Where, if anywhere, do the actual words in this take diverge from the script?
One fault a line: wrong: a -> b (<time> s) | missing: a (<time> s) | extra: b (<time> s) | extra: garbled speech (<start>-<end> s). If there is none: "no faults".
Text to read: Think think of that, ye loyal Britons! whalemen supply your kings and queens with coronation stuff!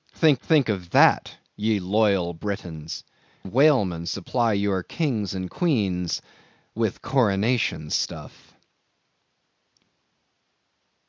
no faults